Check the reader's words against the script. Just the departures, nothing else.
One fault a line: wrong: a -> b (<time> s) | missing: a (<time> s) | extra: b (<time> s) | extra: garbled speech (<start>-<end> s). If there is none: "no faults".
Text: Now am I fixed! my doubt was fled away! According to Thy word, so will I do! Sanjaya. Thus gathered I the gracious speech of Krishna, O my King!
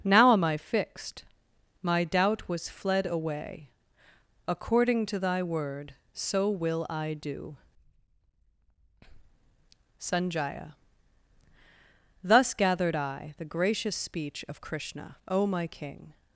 no faults